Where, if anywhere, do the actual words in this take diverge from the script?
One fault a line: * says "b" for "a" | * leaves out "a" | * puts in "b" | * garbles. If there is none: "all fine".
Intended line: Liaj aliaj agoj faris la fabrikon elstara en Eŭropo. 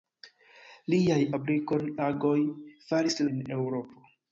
* says "fabrikon" for "aliaj"
* leaves out "la fabrikon elstara"